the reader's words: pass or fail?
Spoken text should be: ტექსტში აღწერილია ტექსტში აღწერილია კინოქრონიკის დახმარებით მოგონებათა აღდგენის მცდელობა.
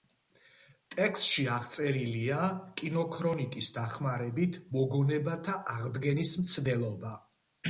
fail